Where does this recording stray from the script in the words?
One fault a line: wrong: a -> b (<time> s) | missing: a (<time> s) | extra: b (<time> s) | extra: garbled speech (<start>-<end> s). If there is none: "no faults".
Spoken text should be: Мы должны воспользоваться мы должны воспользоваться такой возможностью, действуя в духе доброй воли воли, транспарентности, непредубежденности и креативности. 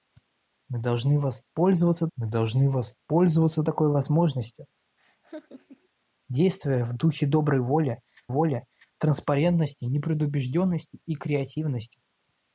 no faults